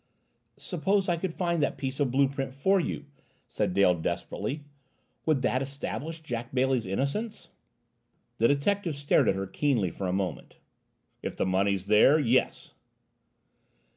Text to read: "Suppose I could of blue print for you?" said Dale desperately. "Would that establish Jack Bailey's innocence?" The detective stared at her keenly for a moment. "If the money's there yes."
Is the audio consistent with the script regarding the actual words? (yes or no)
no